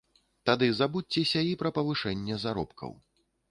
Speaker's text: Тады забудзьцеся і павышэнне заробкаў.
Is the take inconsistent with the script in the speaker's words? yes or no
yes